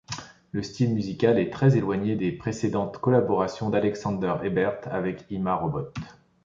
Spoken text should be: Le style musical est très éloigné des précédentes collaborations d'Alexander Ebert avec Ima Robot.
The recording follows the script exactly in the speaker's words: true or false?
true